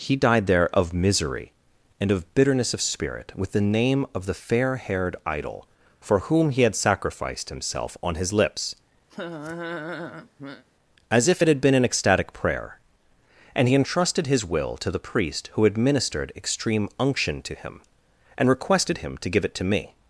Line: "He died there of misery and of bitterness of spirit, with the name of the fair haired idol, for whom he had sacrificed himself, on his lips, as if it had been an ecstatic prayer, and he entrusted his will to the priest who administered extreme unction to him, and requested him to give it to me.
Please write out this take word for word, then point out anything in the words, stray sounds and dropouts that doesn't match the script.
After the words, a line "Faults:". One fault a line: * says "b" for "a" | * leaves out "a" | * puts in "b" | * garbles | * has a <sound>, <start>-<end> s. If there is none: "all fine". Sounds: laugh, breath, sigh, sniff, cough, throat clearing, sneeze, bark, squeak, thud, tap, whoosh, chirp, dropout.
"He died there of misery and of bitterness of spirit, with the name of the fair haired idol, for whom he had sacrificed himself, on his lips, as if it had been an ecstatic prayer, and he entrusted his will to the priest who administered extreme unction to him, and requested him to give it to me.
Faults:
* has a laugh, 9.1-10.6 s